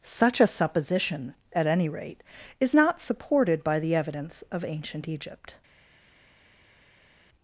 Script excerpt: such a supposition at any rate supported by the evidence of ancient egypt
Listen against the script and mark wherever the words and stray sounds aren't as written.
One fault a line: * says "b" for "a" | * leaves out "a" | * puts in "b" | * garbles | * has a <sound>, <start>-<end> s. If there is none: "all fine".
* puts in "is not"